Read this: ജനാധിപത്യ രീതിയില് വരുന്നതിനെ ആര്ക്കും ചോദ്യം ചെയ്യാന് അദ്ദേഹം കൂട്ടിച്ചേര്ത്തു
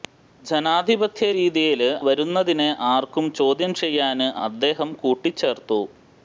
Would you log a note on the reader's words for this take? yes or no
no